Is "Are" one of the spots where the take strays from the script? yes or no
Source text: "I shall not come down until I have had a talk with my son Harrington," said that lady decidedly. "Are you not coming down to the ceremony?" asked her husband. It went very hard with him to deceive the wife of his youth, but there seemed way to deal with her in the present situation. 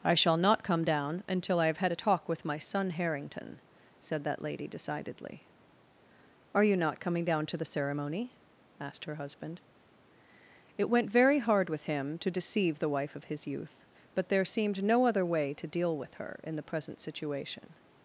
no